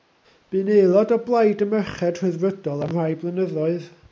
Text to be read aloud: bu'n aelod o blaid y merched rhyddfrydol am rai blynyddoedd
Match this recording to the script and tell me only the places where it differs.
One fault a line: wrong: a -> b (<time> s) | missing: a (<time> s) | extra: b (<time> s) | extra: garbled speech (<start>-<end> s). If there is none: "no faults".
no faults